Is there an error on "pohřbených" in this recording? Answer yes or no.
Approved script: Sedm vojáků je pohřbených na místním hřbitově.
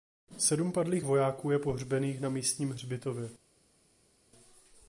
no